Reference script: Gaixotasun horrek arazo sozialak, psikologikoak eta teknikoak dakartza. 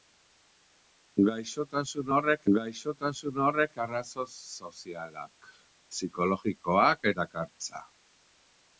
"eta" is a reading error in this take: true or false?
true